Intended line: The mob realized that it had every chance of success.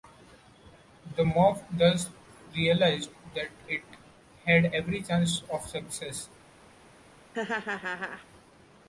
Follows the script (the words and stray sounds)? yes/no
no